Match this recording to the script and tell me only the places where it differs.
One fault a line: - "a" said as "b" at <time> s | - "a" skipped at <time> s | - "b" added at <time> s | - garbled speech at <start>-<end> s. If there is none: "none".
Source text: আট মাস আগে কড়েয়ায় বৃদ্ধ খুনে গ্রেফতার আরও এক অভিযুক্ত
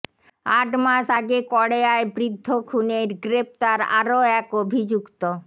none